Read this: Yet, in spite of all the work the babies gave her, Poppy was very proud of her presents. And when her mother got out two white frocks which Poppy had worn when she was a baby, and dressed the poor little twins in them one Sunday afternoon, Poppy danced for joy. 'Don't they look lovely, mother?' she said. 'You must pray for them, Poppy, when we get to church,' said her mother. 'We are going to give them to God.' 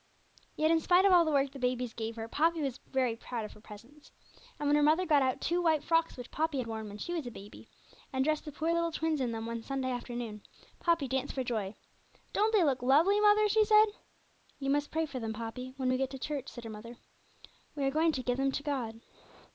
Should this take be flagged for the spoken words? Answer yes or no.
no